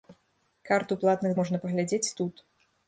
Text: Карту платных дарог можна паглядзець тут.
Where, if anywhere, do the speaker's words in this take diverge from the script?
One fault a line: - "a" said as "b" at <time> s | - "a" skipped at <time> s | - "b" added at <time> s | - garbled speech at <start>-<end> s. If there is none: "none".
- "дарог" skipped at 1.4 s